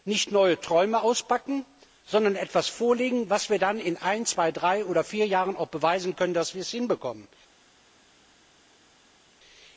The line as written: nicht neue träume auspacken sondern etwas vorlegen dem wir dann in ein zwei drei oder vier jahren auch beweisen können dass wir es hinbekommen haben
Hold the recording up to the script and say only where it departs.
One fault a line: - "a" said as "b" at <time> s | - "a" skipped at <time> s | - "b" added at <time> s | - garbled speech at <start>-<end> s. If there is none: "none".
- "bei" added at 3.3 s